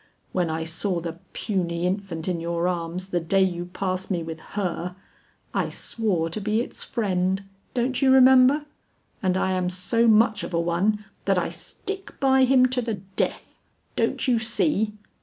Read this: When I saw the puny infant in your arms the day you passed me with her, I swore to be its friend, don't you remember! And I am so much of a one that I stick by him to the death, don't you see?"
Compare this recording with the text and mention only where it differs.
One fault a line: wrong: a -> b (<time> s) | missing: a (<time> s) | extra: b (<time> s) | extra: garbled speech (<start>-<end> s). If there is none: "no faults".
no faults